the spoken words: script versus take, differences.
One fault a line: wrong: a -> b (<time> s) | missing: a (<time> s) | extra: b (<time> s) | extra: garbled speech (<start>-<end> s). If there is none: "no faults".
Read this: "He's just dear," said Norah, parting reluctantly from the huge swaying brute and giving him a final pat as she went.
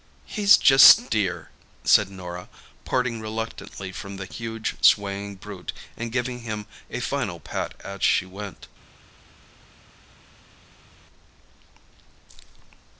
no faults